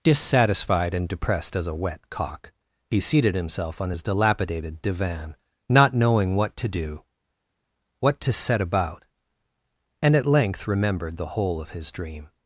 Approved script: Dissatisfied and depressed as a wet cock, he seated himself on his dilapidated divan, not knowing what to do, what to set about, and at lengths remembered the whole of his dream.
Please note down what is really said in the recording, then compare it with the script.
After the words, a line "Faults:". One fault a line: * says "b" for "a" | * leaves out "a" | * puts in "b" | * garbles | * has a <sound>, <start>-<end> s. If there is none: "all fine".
Dissatisfied and depressed as a wet cock, he seated himself on his dilapidated divan, not knowing what to do, what to set about, and at length remembered the whole of his dream.
Faults:
* says "length" for "lengths"